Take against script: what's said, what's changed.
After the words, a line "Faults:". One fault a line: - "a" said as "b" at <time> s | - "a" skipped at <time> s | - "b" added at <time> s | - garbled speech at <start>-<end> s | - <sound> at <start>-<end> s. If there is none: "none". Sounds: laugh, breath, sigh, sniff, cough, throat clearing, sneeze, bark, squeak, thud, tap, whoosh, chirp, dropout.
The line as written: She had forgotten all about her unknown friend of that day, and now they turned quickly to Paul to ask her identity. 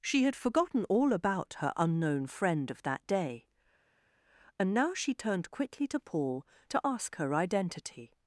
She had forgotten all about her unknown friend of that day, and now she turned quickly to Paul to ask her identity.
Faults:
- "they" said as "she" at 4.9 s